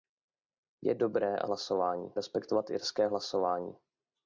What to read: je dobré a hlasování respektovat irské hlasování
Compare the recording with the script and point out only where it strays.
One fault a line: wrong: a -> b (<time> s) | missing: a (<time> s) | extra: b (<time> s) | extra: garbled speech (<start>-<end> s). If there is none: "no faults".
no faults